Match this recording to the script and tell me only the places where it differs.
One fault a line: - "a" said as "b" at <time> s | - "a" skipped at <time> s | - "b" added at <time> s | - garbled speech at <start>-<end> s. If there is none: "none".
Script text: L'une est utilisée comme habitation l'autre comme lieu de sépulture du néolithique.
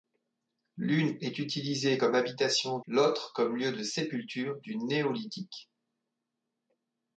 none